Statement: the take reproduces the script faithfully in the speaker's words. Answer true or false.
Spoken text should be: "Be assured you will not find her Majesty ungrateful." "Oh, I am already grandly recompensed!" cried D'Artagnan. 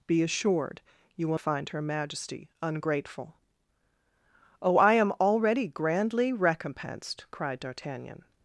false